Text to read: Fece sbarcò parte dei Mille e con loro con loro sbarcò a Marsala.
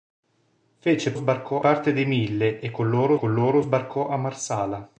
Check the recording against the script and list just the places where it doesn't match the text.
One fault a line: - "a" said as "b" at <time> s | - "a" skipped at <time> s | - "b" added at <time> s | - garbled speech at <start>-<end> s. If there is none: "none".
none